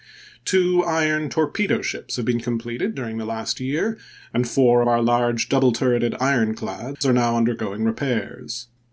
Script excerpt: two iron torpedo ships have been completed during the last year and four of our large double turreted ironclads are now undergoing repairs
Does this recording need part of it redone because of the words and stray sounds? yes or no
yes